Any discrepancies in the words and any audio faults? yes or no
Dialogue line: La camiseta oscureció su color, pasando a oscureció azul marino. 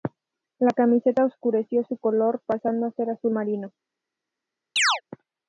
yes